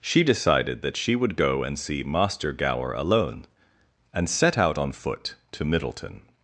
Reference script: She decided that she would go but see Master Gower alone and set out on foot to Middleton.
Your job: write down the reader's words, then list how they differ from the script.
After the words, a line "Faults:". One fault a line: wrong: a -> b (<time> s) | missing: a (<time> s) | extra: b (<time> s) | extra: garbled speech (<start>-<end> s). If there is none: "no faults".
She decided that she would go and see Master Gower alone and set out on foot to Middleton.
Faults:
wrong: but -> and (1.6 s)